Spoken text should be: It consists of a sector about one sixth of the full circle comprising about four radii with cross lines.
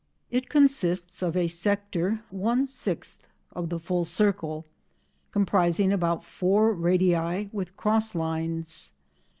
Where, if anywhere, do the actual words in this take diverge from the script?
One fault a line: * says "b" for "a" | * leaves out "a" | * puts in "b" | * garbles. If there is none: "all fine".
* leaves out "about"